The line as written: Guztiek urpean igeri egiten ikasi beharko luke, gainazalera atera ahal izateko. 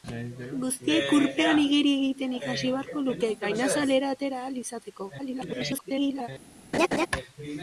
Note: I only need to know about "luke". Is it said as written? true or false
true